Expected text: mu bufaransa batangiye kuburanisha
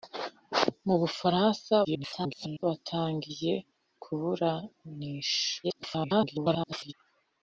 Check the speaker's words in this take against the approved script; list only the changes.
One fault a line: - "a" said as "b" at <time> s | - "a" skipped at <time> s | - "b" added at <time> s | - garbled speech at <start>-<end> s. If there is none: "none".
- garbled speech at 1.8-2.6 s
- garbled speech at 5.6-6.9 s